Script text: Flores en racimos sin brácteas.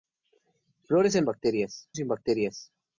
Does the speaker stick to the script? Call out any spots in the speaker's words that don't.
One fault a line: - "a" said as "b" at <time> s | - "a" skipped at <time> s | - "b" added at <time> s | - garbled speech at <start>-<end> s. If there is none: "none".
- "racimos" said as "brácteas" at 1.2 s